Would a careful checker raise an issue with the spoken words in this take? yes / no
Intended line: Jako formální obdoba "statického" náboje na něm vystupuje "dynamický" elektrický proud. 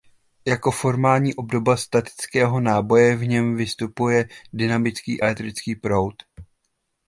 yes